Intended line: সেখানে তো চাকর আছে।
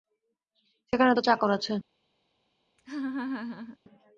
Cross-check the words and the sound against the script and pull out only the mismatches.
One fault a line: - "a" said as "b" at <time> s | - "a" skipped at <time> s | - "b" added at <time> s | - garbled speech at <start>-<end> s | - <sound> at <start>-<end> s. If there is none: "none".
- laugh at 2.8-3.8 s